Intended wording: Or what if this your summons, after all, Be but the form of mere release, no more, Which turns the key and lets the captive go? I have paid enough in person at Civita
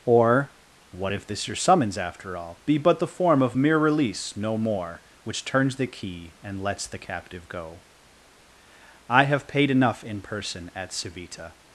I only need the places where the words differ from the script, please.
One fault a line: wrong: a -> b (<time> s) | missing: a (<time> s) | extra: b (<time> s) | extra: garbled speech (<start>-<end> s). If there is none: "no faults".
no faults